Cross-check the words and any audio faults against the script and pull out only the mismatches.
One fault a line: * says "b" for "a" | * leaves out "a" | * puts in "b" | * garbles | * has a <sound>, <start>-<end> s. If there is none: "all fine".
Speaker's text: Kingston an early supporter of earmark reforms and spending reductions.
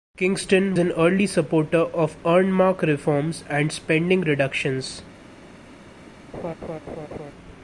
* has a laugh, 6.3-7.3 s